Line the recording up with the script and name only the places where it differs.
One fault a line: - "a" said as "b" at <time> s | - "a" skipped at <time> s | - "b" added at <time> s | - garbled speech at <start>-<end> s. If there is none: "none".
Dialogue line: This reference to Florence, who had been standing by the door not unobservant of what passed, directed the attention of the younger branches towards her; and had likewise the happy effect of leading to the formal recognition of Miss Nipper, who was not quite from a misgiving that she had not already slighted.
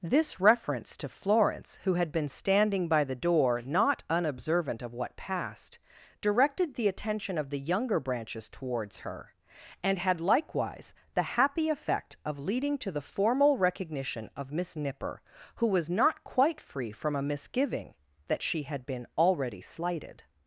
- "free" added at 16.6 s
- "not" said as "been" at 18.8 s